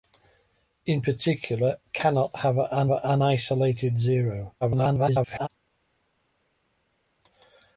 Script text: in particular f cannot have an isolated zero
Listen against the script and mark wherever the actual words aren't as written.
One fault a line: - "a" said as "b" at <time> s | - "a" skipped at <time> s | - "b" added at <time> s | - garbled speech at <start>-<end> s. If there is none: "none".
- "f" skipped at 1.8 s
- "an" added at 2.9 s
- garbled speech at 4.6-5.5 s